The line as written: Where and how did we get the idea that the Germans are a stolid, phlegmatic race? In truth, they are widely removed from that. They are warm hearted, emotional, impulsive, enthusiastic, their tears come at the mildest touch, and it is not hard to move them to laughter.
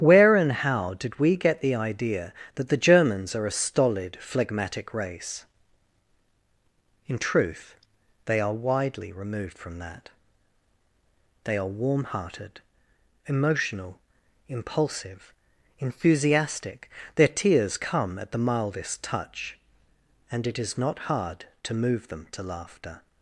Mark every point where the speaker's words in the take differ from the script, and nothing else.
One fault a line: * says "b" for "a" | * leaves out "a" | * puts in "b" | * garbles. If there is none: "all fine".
all fine